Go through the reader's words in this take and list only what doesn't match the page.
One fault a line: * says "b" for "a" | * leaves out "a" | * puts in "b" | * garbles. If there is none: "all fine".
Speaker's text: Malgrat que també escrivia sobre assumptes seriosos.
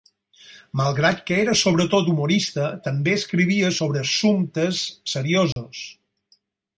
* puts in "era sobretot humorista"